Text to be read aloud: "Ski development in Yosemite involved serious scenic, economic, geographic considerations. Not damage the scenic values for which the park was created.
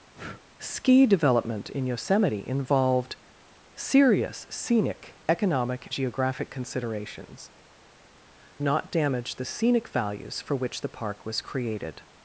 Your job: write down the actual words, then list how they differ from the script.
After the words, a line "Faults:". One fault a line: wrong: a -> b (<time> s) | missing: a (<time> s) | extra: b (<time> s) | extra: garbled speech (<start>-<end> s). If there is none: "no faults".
"Ski development in Yosemite involved serious scenic, economic, geographic considerations. Not damage the scenic values for which the park was created.
Faults:
no faults